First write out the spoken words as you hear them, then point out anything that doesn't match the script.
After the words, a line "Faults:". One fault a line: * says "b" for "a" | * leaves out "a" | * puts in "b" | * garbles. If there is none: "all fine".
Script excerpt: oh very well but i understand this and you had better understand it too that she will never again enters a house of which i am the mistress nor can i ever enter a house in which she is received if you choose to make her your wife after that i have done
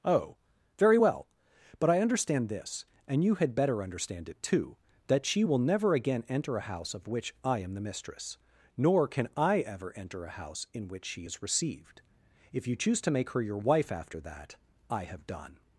oh very well but i understand this and you had better understand it too that she will never again enter a house of which i am the mistress nor can i ever enter a house in which she is received if you choose to make her your wife after that i have done
Faults:
* says "enter" for "enters"